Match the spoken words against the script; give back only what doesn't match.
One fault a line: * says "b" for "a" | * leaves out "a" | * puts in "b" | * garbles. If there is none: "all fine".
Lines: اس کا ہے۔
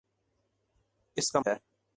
all fine